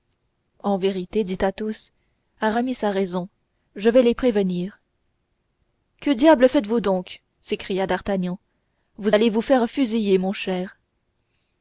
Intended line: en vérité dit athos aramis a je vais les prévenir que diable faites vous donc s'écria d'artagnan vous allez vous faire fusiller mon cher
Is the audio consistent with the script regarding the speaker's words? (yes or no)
no